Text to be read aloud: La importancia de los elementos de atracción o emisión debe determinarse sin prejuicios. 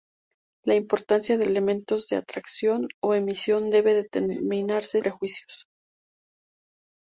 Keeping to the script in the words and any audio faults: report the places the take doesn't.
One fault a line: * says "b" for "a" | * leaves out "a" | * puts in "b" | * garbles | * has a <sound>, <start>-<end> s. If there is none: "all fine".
* leaves out "los"
* leaves out "sin"